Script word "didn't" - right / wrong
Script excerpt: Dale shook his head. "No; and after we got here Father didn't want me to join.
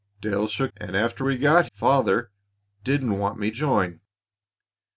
right